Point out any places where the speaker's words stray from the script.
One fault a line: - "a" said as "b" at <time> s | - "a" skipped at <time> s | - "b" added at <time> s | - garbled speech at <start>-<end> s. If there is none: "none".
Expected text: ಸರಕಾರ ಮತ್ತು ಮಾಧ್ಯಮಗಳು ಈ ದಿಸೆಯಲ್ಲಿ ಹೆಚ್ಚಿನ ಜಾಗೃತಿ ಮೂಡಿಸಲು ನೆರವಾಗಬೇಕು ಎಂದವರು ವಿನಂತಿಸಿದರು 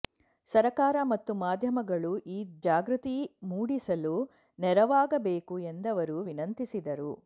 - "ದಿಸೆಯಲ್ಲಿ ಹೆಚ್ಚಿನ" skipped at 2.4 s